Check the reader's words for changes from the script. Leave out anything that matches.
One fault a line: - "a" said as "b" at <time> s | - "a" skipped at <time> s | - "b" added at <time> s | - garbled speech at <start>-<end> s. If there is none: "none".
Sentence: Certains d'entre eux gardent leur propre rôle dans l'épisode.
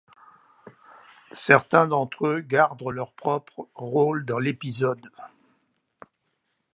none